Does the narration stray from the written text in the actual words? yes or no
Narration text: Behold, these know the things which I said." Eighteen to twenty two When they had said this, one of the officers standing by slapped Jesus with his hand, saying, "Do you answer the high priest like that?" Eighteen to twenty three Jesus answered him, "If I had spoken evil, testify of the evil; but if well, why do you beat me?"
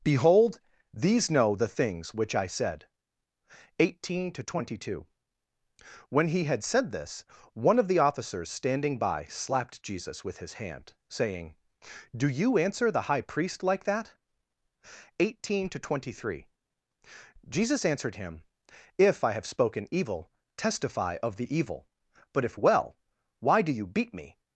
yes